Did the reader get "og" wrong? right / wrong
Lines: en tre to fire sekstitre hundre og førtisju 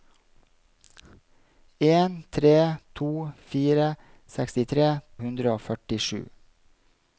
right